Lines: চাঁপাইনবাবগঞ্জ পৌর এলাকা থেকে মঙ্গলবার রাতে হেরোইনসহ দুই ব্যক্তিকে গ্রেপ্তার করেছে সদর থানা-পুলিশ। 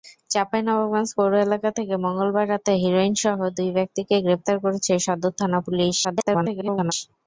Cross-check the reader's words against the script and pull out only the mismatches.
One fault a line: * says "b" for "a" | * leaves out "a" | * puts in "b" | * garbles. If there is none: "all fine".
* garbles